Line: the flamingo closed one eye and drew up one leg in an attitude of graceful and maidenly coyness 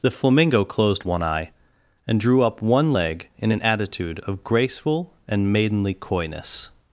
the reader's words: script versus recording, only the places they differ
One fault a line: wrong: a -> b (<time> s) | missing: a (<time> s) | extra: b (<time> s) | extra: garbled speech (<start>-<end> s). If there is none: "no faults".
no faults